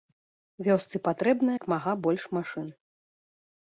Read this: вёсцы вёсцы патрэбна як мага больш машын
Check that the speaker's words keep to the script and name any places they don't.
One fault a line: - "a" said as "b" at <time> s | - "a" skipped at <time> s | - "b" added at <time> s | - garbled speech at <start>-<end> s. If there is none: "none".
- "вёсцы" skipped at 0.9 s